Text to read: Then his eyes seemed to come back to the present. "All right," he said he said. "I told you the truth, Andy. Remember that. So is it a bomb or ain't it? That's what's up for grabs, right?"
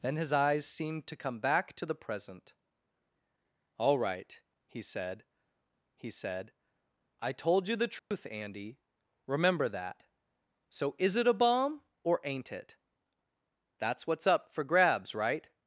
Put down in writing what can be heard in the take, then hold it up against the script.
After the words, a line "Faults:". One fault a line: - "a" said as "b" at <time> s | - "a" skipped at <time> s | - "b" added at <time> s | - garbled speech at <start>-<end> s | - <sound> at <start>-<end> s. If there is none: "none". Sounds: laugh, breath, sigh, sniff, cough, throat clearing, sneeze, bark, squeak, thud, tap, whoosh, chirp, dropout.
Then his eyes seemed to come back to the present. "All right," he said he said. "I told you the truth, Andy. Remember that. So is it a bomb or ain't it? That's what's up for grabs, right?"
Faults:
- dropout at 8.0-8.1 s